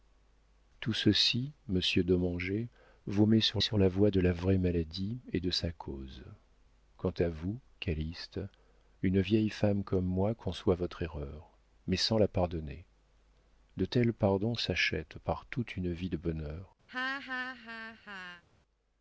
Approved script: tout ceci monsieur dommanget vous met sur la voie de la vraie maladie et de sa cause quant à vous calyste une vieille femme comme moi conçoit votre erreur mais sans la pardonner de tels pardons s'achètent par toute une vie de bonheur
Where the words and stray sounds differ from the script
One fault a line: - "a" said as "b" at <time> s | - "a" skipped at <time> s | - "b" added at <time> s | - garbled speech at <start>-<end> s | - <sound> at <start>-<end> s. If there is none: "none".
- "sur" added at 3.6 s
- laugh at 16.9-18.4 s